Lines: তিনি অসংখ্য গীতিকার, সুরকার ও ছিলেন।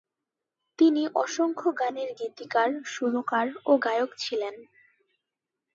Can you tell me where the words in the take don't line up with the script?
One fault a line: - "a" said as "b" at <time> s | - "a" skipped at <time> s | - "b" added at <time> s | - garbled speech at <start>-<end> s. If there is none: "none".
- "গানের" added at 1.8 s
- "গায়ক" added at 3.9 s